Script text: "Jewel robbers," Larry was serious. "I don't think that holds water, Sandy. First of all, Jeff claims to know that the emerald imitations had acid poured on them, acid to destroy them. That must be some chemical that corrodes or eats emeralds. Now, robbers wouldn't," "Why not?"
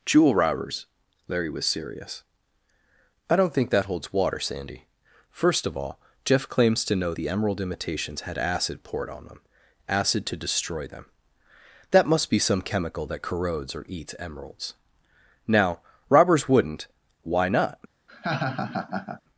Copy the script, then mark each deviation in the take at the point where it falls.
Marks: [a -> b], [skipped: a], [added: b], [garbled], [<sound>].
"Jewel robbers," Larry was serious. "I don't think that holds water, Sandy. First of all, Jeff claims to know [skipped: that] the emerald imitations had acid poured on them, acid to destroy them. That must be some chemical that corrodes or eats emeralds. Now, robbers wouldn't," "Why not?" [laugh]